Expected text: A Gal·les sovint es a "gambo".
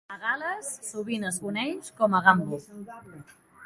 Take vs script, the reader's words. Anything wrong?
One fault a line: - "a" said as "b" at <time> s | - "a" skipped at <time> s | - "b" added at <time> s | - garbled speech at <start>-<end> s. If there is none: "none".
- "coneix com" added at 1.5 s